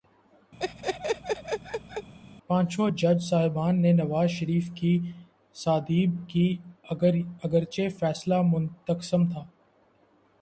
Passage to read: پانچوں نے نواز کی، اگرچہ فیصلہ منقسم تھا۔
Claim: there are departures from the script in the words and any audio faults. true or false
true